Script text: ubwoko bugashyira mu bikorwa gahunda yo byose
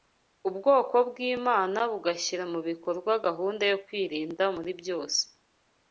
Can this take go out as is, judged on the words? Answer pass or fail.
fail